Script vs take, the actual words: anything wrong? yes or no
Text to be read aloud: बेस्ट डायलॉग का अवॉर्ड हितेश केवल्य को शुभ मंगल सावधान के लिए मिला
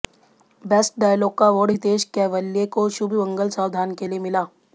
no